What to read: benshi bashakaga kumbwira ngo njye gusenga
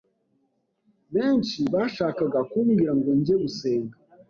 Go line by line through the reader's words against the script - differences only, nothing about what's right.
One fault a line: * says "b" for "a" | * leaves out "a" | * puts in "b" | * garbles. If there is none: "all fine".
all fine